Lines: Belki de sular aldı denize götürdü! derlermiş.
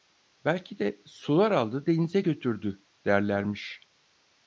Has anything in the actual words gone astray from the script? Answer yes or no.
no